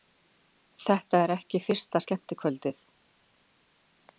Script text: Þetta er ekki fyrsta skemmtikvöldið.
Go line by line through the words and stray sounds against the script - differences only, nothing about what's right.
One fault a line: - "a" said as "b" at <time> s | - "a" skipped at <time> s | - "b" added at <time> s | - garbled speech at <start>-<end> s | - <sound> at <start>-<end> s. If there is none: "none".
none